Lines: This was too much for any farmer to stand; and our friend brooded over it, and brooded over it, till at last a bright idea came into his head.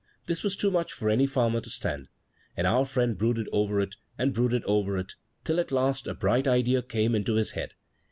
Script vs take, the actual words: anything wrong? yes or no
no